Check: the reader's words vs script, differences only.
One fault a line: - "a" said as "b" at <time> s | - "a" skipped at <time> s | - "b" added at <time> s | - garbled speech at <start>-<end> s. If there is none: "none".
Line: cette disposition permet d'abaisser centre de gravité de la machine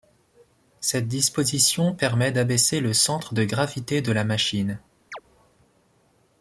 - "le" added at 2.8 s